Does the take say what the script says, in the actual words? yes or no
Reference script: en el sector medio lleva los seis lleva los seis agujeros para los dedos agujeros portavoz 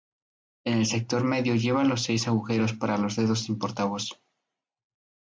no